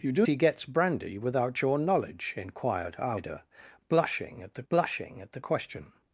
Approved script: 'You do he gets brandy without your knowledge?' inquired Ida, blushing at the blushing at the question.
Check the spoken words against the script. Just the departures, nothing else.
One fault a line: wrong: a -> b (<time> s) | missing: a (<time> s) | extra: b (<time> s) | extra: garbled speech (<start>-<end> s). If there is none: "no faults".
no faults